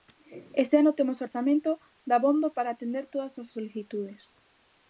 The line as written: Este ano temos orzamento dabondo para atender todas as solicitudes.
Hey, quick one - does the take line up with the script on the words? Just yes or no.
yes